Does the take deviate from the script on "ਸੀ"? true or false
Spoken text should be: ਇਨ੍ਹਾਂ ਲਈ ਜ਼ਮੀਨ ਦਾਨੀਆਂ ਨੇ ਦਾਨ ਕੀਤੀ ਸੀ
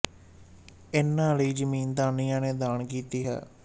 true